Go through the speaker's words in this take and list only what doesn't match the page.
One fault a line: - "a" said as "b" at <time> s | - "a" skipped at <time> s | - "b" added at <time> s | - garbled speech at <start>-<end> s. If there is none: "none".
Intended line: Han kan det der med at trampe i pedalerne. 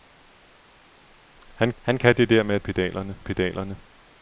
- "han" added at 1.8 s
- "trampe" said as "pedalerne" at 2.6 s